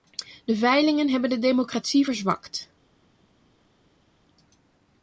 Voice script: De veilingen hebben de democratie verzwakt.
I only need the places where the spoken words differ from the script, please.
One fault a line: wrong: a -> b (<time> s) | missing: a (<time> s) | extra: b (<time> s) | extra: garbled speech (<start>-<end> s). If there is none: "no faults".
no faults